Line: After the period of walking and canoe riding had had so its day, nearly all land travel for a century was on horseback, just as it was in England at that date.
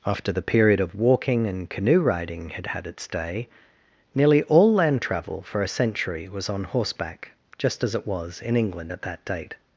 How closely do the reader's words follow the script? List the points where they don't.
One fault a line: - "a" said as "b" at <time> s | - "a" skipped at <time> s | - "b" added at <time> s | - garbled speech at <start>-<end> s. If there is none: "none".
- "so" skipped at 2.9 s